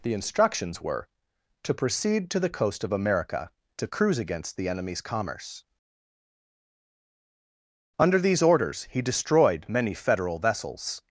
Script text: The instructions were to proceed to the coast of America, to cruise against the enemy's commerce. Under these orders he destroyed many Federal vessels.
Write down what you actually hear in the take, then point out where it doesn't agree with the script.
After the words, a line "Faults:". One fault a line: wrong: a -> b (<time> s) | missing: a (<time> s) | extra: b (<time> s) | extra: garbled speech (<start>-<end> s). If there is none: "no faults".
The instructions were to proceed to the coast of America, to cruise against the enemy's commerce. Under these orders he destroyed many Federal vessels.
Faults:
no faults